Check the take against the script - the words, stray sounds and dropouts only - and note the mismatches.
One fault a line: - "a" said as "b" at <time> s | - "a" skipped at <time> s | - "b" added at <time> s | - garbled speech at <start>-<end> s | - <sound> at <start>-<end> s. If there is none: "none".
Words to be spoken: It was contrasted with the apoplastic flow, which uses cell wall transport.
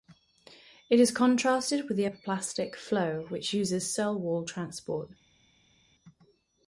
- "was" said as "is" at 1.0 s